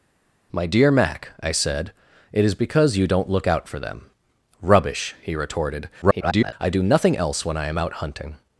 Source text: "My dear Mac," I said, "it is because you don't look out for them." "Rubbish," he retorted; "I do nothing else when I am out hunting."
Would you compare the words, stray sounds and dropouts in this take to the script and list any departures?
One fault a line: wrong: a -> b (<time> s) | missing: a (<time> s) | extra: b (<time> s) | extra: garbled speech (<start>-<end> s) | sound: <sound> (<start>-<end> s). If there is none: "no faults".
extra: garbled speech (6.0-6.5 s)